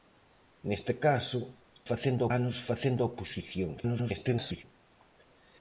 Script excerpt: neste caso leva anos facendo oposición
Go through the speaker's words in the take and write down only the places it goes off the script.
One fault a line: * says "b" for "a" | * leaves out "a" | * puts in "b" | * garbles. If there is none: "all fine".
* says "facendo" for "leva"
* garbles